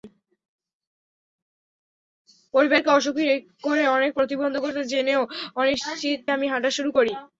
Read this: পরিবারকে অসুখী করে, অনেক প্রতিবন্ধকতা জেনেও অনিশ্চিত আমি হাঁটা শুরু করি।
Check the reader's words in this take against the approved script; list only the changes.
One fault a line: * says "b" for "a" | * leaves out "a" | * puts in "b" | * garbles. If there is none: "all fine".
all fine